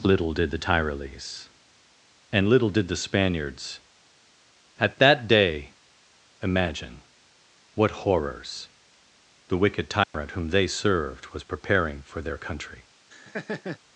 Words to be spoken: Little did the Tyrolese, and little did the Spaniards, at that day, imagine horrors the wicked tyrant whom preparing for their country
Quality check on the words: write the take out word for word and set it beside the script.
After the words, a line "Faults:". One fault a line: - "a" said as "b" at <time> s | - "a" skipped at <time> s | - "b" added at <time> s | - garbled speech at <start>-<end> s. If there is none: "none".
Little did the Tyrolese, and little did the Spaniards, at that day, imagine what horrors the wicked tyrant whom they served was preparing for their country
Faults:
- "what" added at 7.8 s
- "they served was" added at 10.5 s